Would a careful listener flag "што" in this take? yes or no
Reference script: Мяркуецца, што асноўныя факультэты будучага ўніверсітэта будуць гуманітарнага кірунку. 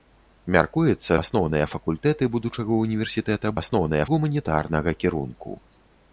yes